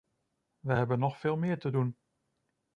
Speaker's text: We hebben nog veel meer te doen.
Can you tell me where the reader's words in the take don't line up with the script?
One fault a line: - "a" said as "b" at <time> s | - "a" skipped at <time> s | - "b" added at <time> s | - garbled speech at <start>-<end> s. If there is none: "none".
none